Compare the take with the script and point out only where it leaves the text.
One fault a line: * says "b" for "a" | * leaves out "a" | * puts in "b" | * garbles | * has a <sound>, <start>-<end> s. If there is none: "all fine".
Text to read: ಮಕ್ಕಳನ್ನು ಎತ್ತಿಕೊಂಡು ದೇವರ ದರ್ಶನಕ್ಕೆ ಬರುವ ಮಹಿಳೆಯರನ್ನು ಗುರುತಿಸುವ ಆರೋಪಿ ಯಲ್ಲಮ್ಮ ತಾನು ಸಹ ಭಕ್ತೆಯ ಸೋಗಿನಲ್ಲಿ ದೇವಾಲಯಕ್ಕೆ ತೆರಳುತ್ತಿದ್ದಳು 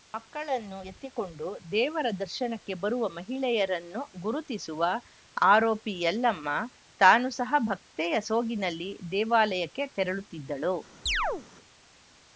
* has a chirp, 11.1-11.4 s